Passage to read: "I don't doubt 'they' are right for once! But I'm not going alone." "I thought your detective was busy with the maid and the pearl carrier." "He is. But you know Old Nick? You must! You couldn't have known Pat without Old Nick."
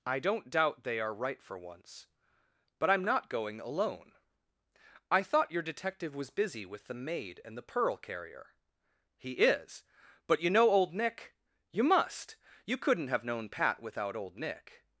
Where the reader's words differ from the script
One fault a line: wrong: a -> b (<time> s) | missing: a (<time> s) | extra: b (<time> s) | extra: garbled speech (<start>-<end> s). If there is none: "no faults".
no faults